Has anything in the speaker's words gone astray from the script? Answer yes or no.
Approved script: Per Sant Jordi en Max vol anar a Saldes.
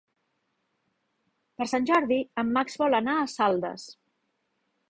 no